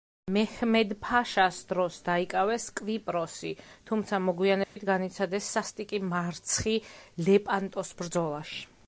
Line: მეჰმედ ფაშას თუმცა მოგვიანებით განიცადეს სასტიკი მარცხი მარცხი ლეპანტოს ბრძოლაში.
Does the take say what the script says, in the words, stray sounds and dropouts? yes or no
no